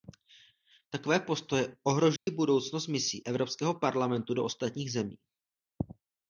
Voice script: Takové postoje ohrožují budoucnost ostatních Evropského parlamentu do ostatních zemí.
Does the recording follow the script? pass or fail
fail